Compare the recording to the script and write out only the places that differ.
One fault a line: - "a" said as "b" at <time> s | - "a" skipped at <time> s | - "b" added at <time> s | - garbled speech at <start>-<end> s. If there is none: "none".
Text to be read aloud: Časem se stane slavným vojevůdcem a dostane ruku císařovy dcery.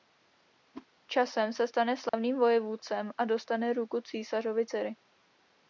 none